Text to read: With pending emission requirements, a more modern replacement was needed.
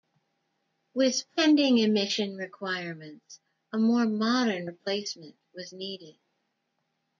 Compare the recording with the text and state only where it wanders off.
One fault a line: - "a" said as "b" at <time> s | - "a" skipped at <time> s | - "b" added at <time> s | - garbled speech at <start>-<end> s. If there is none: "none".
none